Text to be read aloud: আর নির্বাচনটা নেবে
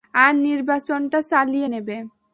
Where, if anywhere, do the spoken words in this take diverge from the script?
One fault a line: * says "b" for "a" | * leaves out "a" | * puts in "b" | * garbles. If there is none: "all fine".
* puts in "চালিয়ে"